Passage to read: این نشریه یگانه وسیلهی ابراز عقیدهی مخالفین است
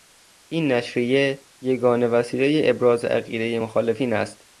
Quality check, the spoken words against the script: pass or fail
pass